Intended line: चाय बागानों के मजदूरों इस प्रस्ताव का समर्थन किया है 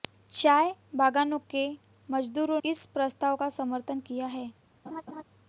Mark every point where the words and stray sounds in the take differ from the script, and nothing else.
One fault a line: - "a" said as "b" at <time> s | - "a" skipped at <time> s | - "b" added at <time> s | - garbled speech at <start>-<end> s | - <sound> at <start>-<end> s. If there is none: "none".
- laugh at 4.8-5.2 s